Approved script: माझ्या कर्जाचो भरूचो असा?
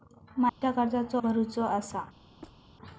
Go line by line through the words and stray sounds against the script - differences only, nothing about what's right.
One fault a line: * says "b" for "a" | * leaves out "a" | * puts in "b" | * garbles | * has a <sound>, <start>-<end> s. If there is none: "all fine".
* has a dropout, 0.5-0.6 s
* has a squeak, 2.4-2.6 s